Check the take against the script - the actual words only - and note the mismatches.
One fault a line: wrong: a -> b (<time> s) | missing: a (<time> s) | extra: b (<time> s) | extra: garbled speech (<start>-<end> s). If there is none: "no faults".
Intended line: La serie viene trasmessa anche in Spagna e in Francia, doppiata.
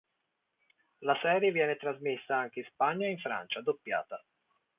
no faults